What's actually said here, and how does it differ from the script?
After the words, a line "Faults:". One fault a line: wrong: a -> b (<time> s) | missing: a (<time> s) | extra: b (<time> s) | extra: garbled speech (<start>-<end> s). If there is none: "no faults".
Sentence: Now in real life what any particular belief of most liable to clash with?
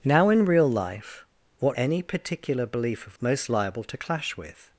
Now in real life what any particular belief of most liable to clash with?
Faults:
no faults